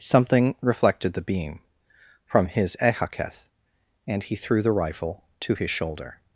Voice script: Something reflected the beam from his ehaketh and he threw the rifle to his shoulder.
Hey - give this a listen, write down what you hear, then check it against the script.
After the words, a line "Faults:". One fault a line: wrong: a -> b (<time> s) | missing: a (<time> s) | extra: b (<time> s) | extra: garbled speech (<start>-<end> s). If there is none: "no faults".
Something reflected the beam from his ehaketh and he threw the rifle to his shoulder.
Faults:
no faults